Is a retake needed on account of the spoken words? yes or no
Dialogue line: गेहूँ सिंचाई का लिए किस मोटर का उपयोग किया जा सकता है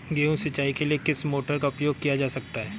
yes